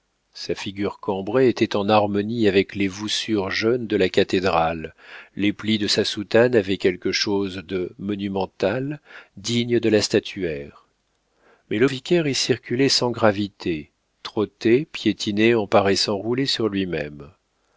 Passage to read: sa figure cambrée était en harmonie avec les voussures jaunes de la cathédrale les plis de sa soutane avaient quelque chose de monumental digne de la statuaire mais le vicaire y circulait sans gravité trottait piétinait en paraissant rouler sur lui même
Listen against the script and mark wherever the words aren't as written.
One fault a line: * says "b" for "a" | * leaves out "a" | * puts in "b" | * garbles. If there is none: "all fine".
all fine